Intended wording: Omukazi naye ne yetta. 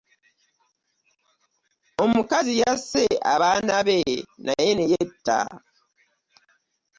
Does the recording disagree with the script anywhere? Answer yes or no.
yes